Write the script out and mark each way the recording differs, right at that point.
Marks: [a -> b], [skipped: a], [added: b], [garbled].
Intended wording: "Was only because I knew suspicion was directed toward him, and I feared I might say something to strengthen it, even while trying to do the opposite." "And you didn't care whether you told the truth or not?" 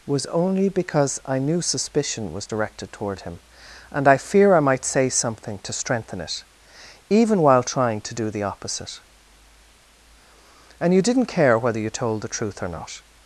"Was only because I knew suspicion was directed toward him, and I [feared -> fear] I might say something to strengthen it, even while trying to do the opposite." "And you didn't care whether you told the truth or not?"